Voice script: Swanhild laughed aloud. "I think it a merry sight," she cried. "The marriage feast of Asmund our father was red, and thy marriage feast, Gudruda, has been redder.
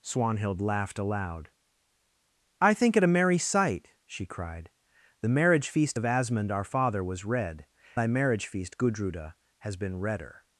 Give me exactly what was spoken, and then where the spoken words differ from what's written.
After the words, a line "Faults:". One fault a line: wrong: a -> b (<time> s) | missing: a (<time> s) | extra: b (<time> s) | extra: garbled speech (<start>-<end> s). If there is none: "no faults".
Swanhild laughed aloud. "I think it a merry sight," she cried. "The marriage feast of Asmund our father was red, thy marriage feast, Gudruda, has been redder.
Faults:
missing: and (7.7 s)